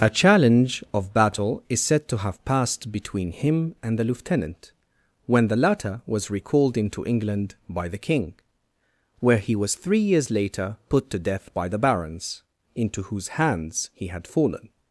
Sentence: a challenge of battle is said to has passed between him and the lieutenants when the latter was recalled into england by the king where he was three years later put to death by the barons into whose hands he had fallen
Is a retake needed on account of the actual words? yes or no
yes